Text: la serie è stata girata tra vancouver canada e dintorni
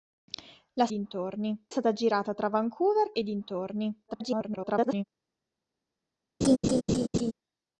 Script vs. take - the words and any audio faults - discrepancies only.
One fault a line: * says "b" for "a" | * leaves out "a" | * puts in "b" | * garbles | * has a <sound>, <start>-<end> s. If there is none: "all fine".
* says "dintorni" for "serie"
* leaves out "canada"
* garbles
* has a laugh, 6.4-7.3 s